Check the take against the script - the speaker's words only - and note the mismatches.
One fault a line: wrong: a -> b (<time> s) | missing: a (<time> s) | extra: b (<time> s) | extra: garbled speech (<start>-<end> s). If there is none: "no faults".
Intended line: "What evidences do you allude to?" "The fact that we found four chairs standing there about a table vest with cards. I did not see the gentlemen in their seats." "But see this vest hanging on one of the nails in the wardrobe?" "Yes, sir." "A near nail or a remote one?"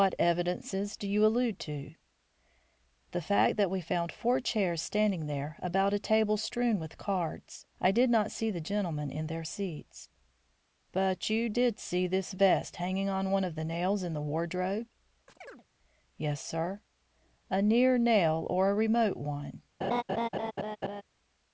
wrong: vest -> strewn (6.4 s)
extra: you did (11.3 s)